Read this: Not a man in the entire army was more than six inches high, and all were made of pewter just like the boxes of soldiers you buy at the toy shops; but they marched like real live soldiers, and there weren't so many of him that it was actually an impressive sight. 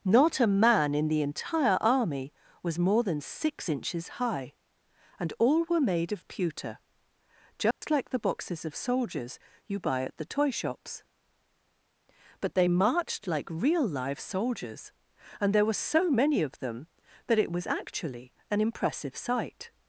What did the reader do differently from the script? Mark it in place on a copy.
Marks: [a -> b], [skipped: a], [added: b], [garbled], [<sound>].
Not a man in the entire army was more than six inches high, and all were made of pewter just [dropout] like the boxes of soldiers you buy at the toy shops; but they marched like real live soldiers, and there [weren't -> were] so many of [him -> them] that it was actually an impressive sight.